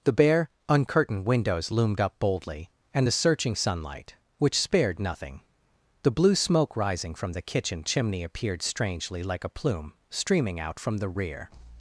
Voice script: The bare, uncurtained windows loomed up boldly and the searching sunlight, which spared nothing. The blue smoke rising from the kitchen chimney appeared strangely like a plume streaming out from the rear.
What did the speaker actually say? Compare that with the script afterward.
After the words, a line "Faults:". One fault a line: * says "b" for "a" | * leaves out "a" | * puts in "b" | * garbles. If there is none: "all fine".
The bare, uncurtained windows loomed up boldly and the searching sunlight, which spared nothing. The blue smoke rising from the kitchen chimney appeared strangely like a plume streaming out from the rear.
Faults:
all fine